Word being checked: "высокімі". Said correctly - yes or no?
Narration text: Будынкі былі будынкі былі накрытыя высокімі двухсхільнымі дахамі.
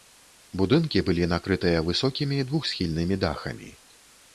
yes